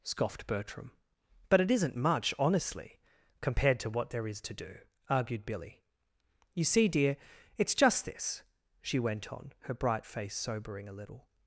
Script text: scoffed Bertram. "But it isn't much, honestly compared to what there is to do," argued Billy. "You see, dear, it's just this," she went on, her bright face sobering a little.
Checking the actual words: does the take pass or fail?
pass